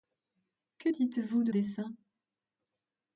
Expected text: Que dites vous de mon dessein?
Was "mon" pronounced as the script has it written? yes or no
no